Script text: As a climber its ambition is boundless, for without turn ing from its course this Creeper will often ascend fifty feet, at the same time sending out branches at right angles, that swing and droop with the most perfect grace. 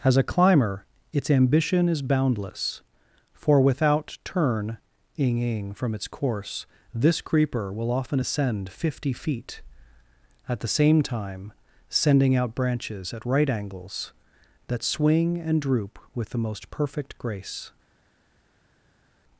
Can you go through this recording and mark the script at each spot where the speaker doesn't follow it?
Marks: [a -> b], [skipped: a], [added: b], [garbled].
As a climber its ambition is boundless, for without turn ing [added: ing] from its course this Creeper will often ascend fifty feet, at the same time sending out branches at right angles, that swing and droop with the most perfect grace.